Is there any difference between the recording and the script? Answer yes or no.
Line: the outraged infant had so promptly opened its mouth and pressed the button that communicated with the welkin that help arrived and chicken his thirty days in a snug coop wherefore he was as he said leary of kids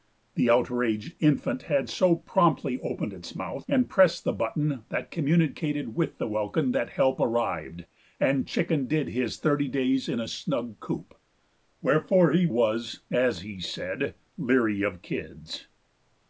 yes